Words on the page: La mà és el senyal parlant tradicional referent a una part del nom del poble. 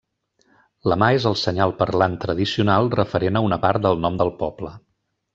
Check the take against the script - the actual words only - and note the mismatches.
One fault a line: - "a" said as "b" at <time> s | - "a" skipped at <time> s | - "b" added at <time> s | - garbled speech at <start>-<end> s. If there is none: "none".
none